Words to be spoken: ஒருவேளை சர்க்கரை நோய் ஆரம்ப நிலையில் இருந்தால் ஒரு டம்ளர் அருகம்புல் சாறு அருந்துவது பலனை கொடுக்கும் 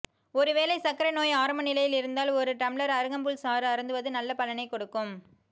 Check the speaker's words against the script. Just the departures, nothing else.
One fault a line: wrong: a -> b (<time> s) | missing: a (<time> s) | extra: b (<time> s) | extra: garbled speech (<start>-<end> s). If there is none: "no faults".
extra: நல்ல (4.1 s)